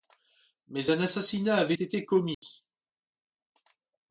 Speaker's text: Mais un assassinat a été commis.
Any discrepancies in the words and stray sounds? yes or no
yes